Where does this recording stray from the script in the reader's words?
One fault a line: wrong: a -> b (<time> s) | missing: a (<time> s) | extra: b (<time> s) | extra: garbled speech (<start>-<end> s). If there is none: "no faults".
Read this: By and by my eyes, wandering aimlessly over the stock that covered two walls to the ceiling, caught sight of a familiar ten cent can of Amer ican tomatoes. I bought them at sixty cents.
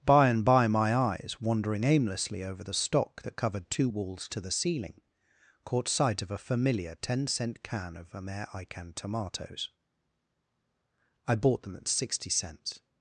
no faults